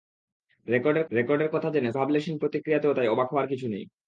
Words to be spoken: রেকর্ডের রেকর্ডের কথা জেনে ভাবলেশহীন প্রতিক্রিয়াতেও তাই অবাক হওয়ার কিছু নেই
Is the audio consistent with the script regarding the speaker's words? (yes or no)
yes